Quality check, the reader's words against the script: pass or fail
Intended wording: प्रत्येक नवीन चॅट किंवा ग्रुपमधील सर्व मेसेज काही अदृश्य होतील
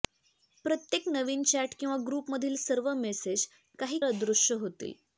pass